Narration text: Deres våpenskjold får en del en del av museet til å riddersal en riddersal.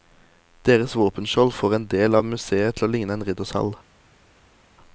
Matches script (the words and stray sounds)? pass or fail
fail